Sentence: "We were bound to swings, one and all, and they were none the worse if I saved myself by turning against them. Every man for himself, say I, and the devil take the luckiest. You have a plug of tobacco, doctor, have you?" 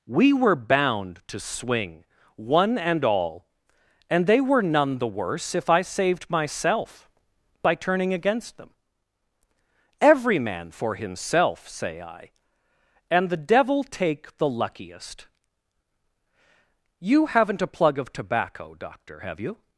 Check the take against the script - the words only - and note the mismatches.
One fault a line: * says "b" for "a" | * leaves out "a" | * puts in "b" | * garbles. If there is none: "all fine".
* says "swing" for "swings"
* says "haven't" for "have"